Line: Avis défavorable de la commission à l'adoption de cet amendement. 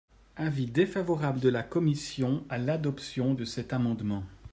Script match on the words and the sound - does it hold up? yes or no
yes